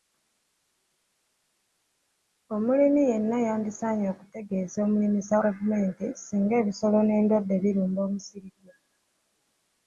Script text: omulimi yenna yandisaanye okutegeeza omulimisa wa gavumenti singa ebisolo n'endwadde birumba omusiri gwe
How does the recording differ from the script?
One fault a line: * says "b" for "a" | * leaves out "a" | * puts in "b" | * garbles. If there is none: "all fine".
* leaves out "wa"